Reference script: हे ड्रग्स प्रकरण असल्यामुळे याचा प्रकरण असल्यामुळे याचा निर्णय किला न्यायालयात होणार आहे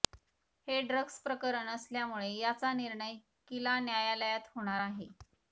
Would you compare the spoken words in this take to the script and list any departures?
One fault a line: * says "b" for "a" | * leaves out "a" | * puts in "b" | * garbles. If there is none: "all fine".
* leaves out "प्रकरण असल्यामुळे याचा"